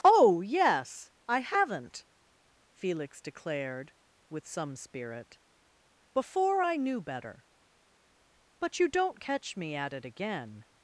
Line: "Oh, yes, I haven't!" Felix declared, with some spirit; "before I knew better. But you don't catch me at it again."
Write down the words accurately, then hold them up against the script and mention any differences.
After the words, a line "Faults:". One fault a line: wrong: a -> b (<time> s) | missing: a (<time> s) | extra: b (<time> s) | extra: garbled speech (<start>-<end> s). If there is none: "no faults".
"Oh, yes, I haven't!" Felix declared, with some spirit; "before I knew better. But you don't catch me at it again."
Faults:
no faults